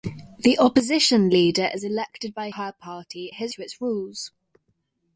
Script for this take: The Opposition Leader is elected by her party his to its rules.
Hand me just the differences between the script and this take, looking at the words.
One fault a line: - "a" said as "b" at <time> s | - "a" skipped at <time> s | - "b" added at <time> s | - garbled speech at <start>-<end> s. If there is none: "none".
none